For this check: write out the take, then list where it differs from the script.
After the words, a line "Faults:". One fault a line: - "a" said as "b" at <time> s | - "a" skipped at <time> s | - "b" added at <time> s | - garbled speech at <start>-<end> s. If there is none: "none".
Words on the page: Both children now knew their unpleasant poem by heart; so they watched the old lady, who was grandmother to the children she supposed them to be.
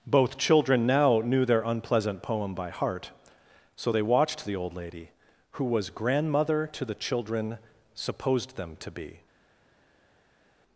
Both children now knew their unpleasant poem by heart; so they watched the old lady, who was grandmother to the children supposed them to be.
Faults:
- "she" skipped at 7.6 s